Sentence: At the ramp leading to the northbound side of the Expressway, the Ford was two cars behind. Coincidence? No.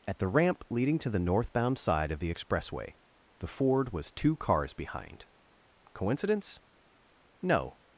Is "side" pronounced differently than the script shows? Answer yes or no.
no